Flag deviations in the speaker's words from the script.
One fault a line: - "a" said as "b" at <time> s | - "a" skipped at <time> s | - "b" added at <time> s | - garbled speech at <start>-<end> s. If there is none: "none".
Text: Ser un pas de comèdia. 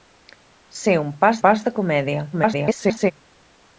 - "pas" added at 1.5 s
- garbled speech at 2.3-3.1 s